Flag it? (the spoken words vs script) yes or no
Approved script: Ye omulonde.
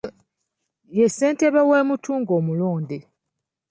yes